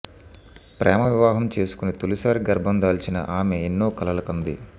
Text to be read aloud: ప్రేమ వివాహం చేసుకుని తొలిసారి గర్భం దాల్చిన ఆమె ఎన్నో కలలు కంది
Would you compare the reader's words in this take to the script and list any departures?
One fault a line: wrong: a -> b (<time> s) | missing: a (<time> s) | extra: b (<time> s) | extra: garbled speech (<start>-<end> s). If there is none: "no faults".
no faults